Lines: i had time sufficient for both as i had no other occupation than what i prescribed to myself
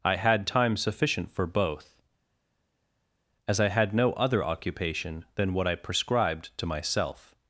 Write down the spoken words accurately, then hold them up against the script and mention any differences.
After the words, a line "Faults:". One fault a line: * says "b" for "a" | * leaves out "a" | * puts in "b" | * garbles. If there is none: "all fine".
i had time sufficient for both as i had no other occupation than what i prescribed to myself
Faults:
all fine